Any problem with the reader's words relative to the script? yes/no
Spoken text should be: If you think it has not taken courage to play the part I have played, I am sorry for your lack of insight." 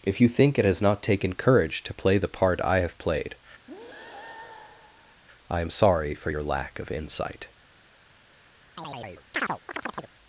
no